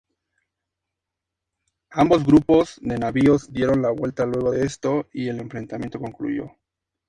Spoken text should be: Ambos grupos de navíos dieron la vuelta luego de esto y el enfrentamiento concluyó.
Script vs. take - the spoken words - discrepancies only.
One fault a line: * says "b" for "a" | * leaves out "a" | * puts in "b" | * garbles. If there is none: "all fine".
all fine